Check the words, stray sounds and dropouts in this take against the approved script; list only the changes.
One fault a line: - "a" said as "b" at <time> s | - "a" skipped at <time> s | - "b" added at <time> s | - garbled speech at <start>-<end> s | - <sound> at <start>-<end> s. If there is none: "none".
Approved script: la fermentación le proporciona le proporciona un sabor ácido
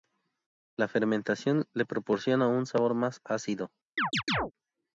- "le proporciona" skipped at 2.5 s
- "más" added at 2.9 s
- chirp at 4.0-4.5 s